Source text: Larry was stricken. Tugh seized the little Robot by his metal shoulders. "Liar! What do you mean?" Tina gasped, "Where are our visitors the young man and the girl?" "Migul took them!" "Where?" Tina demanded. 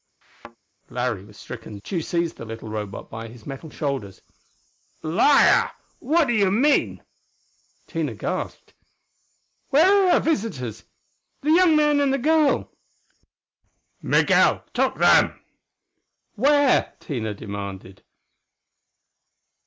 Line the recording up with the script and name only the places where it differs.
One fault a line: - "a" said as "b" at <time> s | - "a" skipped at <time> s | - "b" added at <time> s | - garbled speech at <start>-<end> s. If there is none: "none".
none